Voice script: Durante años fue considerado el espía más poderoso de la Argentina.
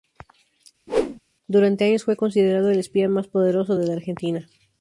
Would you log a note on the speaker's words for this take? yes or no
no